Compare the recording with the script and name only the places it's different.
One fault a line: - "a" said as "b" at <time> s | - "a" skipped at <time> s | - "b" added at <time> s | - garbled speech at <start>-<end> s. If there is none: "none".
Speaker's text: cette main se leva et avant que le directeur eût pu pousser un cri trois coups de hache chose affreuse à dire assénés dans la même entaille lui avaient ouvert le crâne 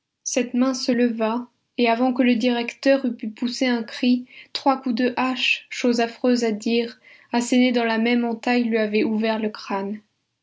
none